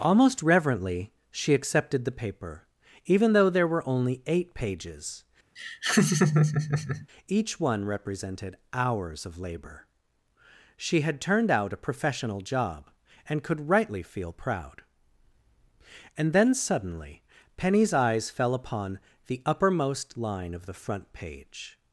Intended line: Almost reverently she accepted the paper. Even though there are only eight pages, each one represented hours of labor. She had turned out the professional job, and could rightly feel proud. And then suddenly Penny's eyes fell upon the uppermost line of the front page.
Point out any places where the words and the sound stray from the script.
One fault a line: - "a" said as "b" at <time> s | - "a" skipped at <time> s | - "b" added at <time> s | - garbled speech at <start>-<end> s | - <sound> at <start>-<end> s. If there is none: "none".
- "are" said as "were" at 3.7 s
- laugh at 5.6-7.1 s
- "the" said as "a" at 11.7 s